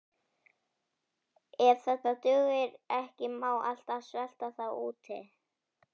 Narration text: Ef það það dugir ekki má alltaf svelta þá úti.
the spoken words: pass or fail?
pass